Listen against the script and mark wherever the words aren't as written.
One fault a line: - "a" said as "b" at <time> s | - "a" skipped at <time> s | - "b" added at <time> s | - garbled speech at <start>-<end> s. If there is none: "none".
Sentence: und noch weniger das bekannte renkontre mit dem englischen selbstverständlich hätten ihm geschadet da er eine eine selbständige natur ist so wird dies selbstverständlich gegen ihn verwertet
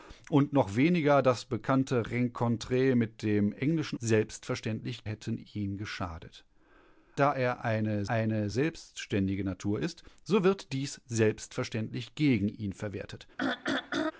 none